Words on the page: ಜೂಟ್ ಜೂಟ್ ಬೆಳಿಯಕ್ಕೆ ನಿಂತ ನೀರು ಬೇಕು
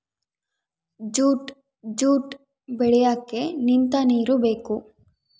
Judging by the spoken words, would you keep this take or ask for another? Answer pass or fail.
pass